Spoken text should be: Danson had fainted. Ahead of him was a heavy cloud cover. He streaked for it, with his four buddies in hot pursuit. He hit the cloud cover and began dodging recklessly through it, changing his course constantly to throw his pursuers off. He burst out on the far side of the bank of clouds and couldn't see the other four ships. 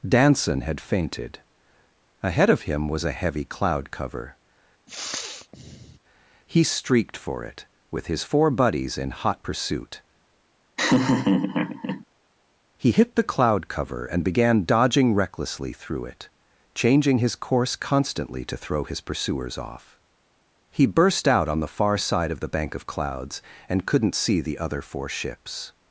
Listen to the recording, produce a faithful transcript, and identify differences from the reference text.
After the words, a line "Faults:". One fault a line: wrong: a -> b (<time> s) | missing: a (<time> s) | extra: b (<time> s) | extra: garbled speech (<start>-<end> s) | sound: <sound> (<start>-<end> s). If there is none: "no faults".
Danson had fainted. Ahead of him was a heavy cloud cover. He streaked for it, with his four buddies in hot pursuit. He hit the cloud cover and began dodging recklessly through it, changing his course constantly to throw his pursuers off. He burst out on the far side of the bank of clouds and couldn't see the other four ships.
Faults:
sound: sniff (4.9-6.0 s)
sound: laugh (10.8-12.0 s)